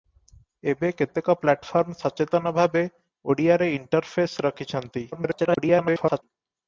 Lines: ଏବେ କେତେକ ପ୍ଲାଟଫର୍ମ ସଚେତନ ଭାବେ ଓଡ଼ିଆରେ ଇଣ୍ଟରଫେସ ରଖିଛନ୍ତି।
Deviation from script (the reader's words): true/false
true